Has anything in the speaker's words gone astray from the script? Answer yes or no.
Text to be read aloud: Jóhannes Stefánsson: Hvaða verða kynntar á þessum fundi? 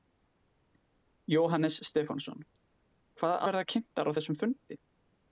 no